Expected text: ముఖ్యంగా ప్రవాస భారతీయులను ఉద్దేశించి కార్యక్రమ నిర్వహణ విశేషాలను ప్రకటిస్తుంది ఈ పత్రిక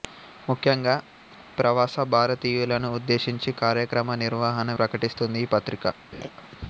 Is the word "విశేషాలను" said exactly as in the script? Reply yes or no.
no